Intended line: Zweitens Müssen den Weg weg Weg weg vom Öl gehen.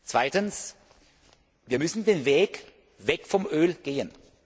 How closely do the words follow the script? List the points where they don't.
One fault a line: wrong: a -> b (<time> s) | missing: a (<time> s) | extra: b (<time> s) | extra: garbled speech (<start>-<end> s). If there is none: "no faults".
extra: Wir (1.6 s)
missing: Weg weg (3.3 s)